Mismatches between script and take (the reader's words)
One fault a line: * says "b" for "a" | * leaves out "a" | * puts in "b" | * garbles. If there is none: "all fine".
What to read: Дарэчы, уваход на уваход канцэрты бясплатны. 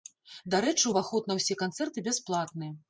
* says "ўсе" for "уваход"